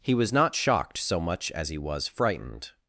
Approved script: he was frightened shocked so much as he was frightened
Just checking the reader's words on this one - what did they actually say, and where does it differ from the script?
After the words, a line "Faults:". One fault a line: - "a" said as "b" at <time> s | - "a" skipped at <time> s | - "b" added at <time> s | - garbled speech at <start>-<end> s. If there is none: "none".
he was not shocked so much as he was frightened
Faults:
- "frightened" said as "not" at 0.3 s